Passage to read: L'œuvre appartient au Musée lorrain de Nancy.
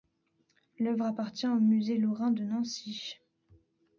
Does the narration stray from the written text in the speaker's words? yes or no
no